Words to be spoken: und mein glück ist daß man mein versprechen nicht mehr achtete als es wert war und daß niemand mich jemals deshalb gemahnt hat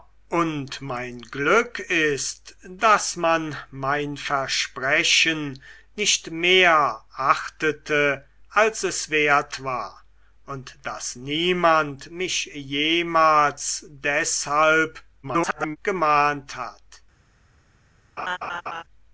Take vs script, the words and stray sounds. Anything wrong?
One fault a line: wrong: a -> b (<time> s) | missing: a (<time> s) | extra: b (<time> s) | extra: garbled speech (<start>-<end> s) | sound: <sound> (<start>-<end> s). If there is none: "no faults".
extra: garbled speech (15.2-15.8 s)
sound: laugh (18.2-18.8 s)